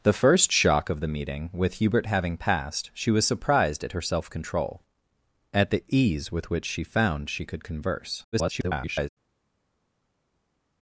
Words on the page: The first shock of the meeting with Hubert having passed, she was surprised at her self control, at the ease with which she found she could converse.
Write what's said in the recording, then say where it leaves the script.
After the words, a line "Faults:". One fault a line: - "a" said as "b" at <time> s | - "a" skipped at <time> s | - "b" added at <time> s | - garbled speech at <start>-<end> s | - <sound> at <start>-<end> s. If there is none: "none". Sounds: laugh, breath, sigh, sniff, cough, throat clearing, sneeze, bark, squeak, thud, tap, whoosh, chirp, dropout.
The first shock of the meeting with Hubert having passed, she was surprised at her self control, at the ease with which she found she could converse. [garbled]
Faults:
- garbled speech at 8.3-9.1 s